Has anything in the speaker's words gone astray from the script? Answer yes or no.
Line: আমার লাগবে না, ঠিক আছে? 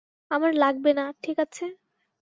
no